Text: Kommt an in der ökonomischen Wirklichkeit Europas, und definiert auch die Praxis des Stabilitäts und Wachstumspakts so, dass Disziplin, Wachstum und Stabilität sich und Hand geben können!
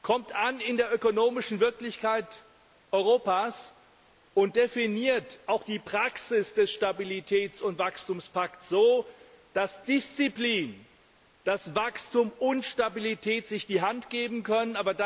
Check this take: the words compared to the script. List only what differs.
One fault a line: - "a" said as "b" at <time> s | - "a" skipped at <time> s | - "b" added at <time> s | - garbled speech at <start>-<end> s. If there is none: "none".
- "und" said as "die" at 13.7 s